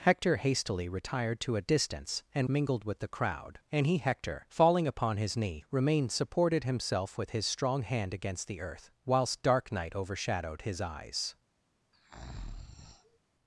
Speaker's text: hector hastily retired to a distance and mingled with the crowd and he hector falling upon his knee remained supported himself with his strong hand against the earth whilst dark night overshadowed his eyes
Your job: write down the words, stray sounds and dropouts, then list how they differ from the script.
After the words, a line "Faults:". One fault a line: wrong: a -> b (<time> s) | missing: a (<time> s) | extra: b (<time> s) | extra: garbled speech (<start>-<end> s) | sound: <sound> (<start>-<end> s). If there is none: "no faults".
hector hastily retired to a distance and mingled with the crowd and he hector falling upon his knee remained supported himself with his strong hand against the earth whilst dark night overshadowed his eyes
Faults:
sound: breath (11.9-13.2 s)